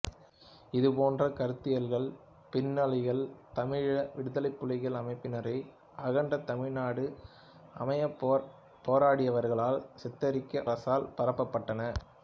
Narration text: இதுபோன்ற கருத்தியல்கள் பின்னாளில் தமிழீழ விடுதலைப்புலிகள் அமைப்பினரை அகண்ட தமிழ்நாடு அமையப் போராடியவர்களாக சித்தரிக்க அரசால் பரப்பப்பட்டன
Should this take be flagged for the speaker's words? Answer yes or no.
no